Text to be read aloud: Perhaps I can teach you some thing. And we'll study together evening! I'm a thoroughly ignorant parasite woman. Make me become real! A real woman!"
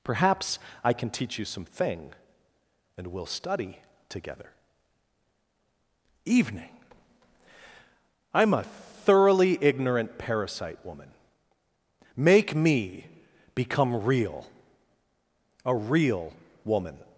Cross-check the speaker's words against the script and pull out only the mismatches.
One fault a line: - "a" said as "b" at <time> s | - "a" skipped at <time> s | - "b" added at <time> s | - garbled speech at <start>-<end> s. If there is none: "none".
none